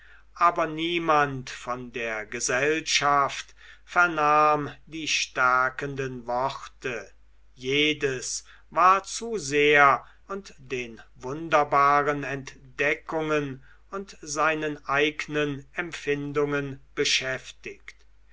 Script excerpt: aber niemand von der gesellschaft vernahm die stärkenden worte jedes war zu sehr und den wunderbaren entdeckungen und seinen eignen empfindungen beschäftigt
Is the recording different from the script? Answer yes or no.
no